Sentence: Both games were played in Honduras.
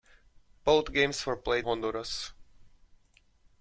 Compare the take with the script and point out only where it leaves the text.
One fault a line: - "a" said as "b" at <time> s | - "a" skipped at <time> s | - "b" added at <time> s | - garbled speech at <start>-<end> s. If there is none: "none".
- "in" skipped at 1.7 s